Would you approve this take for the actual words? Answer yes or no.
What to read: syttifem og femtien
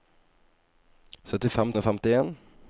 yes